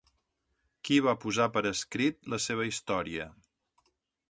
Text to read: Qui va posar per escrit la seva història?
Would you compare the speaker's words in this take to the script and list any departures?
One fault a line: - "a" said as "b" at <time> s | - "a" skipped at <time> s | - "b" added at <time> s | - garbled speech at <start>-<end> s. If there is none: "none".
none